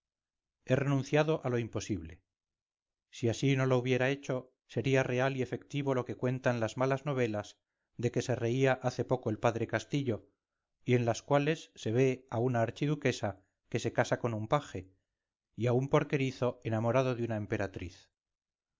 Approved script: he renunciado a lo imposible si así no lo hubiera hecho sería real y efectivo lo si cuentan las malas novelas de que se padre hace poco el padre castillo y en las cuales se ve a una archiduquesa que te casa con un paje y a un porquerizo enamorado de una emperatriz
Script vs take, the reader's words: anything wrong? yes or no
yes